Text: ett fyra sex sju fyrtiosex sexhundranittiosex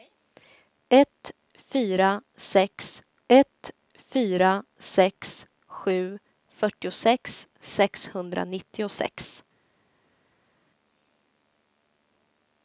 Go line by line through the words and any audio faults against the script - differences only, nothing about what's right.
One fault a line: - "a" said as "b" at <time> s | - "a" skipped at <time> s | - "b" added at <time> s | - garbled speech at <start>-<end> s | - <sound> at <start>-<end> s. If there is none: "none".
- "ett fyra sex" added at 3.3 s